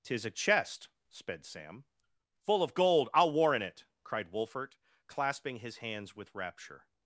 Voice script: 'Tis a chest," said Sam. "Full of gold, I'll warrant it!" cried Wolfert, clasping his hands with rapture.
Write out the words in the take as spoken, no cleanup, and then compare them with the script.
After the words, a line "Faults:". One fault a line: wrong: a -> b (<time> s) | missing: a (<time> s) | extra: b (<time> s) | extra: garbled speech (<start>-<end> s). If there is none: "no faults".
'Tis a chest," sped Sam. "Full of gold, I'll warrant it!" cried Wolfert, clasping his hands with rapture.
Faults:
wrong: said -> sped (1.1 s)